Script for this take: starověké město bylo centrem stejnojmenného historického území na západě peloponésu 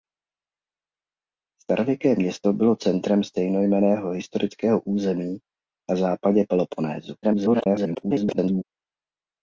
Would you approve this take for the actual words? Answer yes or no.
no